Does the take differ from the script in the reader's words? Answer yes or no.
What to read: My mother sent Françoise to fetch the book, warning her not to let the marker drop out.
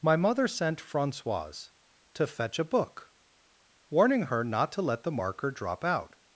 yes